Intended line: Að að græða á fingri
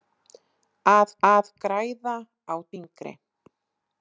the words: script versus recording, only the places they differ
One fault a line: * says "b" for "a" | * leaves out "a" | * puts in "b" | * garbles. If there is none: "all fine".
all fine